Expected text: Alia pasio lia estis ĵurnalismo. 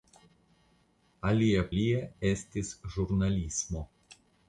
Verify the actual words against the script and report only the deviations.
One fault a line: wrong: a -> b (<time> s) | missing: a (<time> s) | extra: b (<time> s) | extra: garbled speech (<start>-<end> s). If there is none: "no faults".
missing: pasio (1.6 s)